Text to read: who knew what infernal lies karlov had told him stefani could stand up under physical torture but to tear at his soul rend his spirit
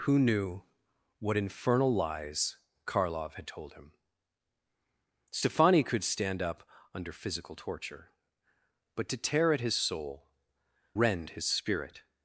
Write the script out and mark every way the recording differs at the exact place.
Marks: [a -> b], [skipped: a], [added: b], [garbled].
who knew what infernal lies karlov had told him stefani could stand up under physical torture but to tear at his soul rend his spirit